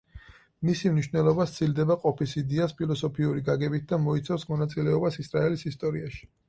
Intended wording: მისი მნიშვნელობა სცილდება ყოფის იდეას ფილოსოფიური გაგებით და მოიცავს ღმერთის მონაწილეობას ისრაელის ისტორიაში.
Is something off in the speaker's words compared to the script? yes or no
yes